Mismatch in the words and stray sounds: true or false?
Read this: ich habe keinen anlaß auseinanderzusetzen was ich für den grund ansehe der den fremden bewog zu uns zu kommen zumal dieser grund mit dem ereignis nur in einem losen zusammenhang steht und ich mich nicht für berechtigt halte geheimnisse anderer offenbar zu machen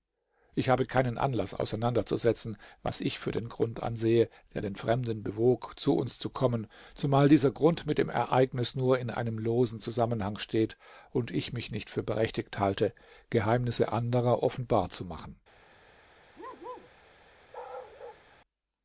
true